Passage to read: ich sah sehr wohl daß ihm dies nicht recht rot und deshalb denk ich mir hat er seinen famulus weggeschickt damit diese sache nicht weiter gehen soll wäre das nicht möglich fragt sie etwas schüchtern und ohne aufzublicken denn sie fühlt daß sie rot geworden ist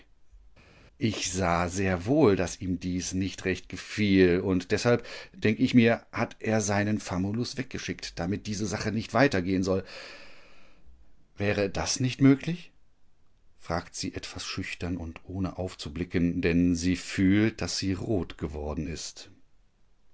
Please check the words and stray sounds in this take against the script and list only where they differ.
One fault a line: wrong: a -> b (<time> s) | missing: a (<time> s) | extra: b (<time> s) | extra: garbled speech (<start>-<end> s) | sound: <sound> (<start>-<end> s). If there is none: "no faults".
wrong: rot -> gefiel (3.7 s)